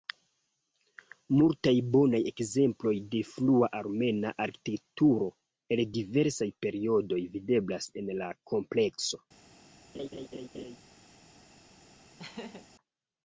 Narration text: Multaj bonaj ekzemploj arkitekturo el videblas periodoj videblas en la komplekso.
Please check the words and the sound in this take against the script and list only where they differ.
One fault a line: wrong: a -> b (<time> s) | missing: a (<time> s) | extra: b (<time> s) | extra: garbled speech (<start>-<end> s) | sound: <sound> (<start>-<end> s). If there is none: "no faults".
extra: de frua armena (3.1 s)
wrong: videblas -> diversaj (6.0 s)
sound: laugh (9.9-10.8 s)
sound: laugh (12.2-12.7 s)